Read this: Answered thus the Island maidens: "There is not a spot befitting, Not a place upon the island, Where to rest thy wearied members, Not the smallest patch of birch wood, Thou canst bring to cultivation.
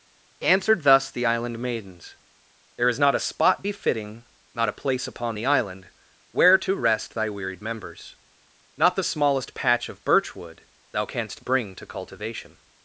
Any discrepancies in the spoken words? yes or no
no